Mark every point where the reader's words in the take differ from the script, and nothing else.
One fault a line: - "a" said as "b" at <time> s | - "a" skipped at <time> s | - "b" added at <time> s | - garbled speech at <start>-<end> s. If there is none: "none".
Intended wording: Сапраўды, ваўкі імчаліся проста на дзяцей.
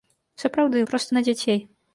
- "ваўкі імчаліся" skipped at 0.8 s